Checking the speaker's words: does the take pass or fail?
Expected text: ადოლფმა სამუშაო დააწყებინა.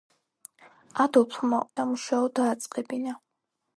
pass